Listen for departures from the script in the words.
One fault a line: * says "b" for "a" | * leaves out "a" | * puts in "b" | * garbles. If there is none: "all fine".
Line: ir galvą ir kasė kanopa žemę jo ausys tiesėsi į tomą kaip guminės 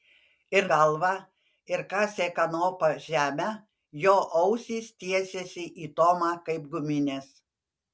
all fine